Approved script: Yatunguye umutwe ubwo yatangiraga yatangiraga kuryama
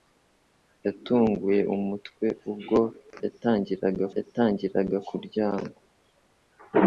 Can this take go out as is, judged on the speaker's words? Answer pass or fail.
pass